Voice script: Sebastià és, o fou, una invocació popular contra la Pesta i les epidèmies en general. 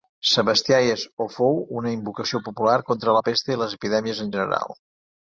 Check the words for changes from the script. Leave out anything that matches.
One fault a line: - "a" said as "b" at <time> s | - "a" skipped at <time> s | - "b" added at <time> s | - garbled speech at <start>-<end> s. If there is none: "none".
none